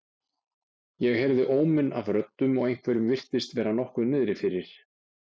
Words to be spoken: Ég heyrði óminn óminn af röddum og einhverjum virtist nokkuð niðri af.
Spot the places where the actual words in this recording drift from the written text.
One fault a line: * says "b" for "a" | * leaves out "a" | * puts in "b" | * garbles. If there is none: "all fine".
* leaves out "óminn"
* puts in "vera"
* says "fyrir" for "af"